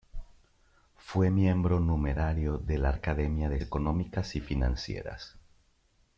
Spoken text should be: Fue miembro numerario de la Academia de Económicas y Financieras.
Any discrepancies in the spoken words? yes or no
no